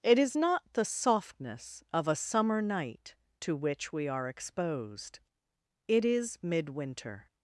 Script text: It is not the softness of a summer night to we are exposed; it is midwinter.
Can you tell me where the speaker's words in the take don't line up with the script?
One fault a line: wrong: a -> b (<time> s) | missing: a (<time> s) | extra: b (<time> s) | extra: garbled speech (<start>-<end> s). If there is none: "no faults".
extra: which (3.6 s)